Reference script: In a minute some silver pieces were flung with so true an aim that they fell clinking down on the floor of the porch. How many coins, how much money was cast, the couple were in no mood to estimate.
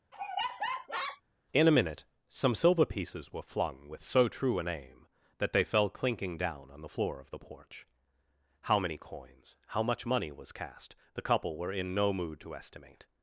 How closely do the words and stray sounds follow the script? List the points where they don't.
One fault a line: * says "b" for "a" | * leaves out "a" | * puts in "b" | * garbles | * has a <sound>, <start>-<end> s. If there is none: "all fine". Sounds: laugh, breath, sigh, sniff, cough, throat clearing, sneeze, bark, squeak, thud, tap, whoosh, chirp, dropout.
* has a laugh, 0.1-1.2 s